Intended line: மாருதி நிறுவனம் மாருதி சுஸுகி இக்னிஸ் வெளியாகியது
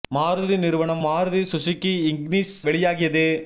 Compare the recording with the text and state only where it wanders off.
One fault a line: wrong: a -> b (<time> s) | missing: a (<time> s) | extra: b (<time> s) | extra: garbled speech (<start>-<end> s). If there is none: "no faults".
no faults